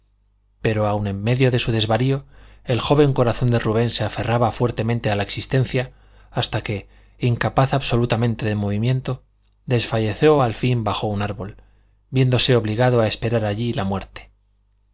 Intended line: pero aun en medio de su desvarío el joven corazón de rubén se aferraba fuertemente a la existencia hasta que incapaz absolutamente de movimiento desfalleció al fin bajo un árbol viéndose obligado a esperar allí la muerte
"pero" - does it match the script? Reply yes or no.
yes